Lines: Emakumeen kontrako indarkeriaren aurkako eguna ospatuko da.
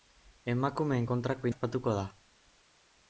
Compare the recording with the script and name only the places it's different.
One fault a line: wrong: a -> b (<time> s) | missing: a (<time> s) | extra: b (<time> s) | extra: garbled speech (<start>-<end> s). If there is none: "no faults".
missing: indarkeriaren aurkako eguna (1.5 s)